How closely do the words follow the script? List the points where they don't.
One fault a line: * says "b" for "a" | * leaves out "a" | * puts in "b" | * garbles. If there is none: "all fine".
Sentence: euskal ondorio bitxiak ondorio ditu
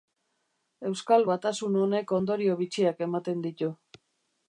* puts in "batasun honek"
* says "ematen" for "ondorio"